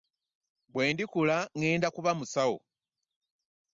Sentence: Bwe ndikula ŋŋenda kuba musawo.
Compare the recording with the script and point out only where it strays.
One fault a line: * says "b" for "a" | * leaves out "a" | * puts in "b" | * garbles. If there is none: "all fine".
all fine